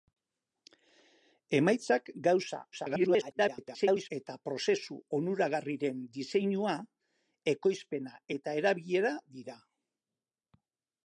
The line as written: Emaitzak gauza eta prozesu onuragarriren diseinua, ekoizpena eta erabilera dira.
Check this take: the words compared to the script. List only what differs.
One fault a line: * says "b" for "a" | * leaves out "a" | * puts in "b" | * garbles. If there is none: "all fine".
* garbles